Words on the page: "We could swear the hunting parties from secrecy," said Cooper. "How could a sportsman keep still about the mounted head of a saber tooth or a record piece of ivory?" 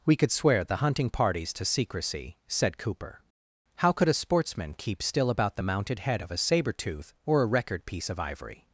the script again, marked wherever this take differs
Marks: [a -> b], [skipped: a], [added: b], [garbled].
"We could swear the hunting parties [from -> to] secrecy," said Cooper. "How could a sportsman keep still about the mounted head of a saber tooth or a record piece of ivory?"